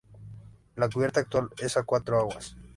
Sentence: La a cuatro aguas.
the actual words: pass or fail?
fail